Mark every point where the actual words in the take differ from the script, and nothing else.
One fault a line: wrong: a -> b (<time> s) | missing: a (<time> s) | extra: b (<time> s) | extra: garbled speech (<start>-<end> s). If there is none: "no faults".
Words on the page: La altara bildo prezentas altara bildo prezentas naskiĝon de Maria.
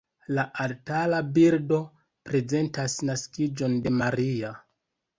missing: altara bildo prezentas (3.0 s)